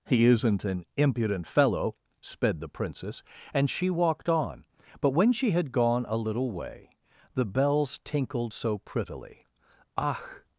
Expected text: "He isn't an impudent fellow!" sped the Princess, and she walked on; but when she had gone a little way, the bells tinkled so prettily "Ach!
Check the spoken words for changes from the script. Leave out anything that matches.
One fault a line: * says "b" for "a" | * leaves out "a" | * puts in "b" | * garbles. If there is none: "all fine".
all fine